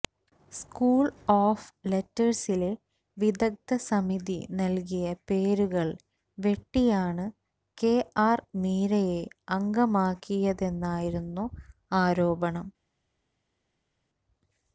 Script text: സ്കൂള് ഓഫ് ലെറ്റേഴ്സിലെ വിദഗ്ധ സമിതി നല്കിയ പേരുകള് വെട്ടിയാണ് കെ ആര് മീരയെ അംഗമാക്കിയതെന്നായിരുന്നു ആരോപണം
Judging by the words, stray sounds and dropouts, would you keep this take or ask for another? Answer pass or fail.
pass